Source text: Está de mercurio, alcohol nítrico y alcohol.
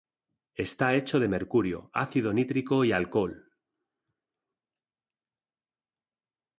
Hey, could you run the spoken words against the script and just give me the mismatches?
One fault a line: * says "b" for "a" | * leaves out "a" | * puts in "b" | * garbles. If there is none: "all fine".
* puts in "hecho"
* says "ácido" for "alcohol"